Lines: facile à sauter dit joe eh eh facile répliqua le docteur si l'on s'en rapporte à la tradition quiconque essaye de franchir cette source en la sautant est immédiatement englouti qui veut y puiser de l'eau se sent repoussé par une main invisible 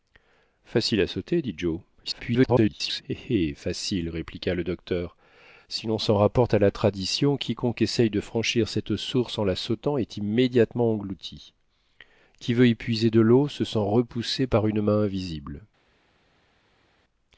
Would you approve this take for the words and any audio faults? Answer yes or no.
no